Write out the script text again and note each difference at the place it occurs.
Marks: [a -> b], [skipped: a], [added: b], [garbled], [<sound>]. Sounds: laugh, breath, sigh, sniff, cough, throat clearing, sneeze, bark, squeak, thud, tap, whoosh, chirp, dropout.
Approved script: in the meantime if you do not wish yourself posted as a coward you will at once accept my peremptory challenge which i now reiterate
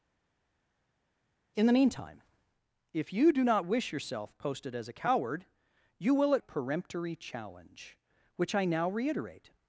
in the meantime if you do not wish yourself posted as a coward you will at [skipped: once accept my] peremptory challenge which i now reiterate